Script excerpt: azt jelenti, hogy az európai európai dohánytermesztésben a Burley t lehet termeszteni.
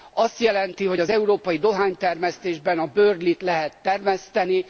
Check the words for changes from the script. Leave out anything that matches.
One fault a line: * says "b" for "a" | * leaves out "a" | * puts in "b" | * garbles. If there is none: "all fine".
* leaves out "európai"